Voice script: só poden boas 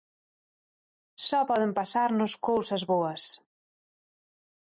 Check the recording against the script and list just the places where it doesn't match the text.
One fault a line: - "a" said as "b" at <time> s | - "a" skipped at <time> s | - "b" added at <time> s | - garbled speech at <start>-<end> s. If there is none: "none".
- "pasarnos cousas" added at 1.8 s